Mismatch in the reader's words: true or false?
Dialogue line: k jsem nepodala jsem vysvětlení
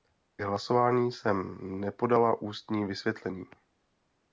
true